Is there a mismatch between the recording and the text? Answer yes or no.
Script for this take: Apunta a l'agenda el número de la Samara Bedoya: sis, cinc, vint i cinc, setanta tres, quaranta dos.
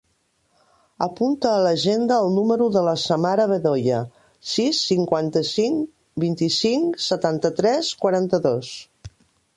yes